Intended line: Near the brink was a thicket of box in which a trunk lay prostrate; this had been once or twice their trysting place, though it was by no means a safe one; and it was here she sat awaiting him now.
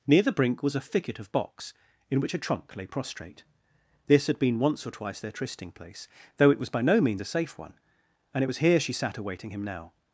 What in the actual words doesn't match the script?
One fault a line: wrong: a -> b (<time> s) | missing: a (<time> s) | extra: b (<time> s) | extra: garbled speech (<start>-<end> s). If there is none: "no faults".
no faults